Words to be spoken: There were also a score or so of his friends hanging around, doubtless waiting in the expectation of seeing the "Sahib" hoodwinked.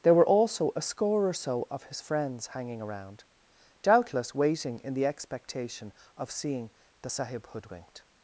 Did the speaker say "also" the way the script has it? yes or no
yes